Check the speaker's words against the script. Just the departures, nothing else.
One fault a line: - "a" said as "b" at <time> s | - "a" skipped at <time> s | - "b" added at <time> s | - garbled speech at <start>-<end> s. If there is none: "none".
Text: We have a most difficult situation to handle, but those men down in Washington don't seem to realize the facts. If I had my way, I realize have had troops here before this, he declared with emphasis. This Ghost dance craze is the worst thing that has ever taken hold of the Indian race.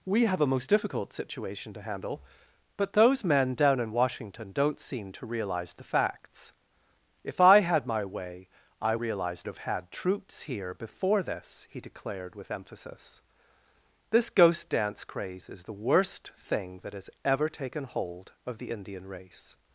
none